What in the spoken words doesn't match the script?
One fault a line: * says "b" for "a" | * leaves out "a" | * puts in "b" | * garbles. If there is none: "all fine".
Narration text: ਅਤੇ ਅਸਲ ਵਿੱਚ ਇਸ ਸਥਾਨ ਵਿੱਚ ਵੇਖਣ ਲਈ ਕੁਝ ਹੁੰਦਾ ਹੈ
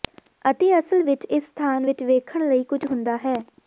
all fine